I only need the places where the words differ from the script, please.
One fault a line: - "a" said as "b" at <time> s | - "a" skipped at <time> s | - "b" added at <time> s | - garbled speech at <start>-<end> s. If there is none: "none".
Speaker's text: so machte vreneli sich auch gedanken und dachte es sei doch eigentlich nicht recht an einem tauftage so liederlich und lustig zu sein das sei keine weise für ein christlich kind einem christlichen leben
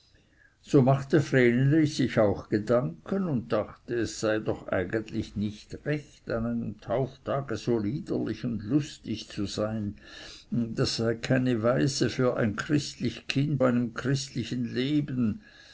none